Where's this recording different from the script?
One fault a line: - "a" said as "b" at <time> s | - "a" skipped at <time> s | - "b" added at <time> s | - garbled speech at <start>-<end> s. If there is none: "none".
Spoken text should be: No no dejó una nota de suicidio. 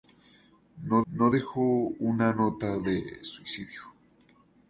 none